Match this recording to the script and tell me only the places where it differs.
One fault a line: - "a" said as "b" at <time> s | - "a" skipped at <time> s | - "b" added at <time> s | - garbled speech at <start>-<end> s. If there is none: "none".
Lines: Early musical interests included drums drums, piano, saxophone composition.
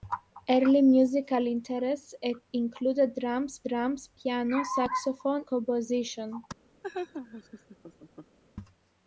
none